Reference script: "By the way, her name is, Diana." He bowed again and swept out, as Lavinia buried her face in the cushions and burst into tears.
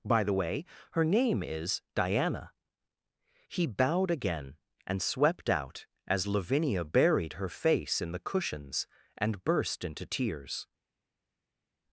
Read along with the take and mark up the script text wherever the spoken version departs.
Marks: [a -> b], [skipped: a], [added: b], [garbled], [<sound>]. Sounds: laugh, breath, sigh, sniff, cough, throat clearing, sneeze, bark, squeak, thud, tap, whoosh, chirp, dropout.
"By the way, her name is, Diana." He bowed again and swept out, as Lavinia buried her face in the cushions and burst into tears.